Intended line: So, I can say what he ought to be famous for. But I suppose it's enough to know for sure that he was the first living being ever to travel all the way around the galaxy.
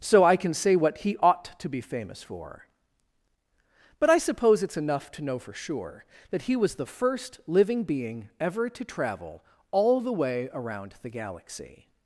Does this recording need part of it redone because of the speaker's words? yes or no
no